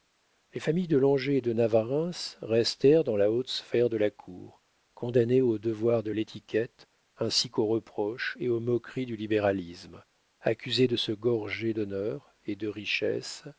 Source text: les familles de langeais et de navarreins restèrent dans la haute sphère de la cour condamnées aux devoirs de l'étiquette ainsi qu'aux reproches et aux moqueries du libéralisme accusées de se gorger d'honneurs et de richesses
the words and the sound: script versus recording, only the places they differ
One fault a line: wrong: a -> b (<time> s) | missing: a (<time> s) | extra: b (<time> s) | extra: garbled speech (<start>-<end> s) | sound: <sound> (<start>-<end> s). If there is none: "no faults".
no faults